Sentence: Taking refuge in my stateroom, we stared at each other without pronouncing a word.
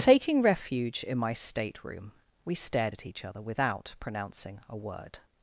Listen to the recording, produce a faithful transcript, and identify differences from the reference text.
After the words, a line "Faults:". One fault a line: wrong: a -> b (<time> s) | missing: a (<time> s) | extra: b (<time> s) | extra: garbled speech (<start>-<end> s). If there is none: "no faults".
Taking refuge in my stateroom, we stared at each other without pronouncing a word.
Faults:
no faults